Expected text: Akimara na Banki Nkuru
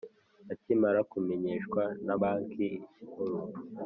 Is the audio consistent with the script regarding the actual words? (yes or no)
no